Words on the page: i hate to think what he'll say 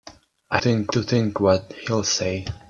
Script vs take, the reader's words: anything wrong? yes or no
yes